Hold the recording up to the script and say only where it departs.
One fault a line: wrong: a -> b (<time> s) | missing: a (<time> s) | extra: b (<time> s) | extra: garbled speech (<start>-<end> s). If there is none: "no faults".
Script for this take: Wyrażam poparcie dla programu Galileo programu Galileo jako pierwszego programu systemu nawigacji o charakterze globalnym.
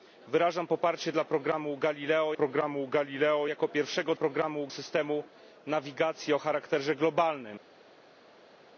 no faults